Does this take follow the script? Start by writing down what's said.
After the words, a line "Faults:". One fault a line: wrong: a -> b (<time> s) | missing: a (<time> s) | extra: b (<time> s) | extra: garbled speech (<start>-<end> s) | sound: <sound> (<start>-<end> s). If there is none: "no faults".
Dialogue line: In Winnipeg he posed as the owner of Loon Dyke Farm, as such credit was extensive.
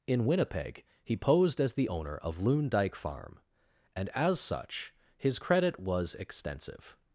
In Winnipeg he posed as the owner of Loon Dyke Farm, and as such his credit was extensive.
Faults:
extra: and (4.0 s)
extra: his (5.2 s)